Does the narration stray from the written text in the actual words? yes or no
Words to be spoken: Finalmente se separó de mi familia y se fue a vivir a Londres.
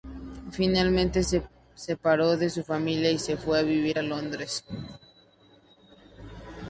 yes